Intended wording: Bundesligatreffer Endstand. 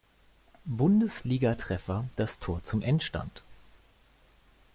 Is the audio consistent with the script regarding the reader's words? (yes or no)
no